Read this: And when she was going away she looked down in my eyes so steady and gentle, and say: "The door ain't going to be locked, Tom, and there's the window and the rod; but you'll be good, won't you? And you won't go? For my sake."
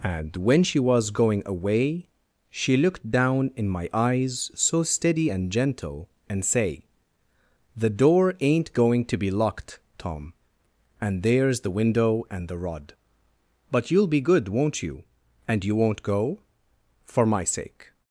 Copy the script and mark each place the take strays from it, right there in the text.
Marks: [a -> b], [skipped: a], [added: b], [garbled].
And when she was going away she looked down in my eyes so steady and gentle, and say: "The door ain't going to be locked, Tom, and there's the window and the rod; but you'll be good, won't you? And you won't go? For my sake."